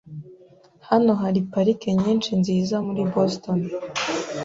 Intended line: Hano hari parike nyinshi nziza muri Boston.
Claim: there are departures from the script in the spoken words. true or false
false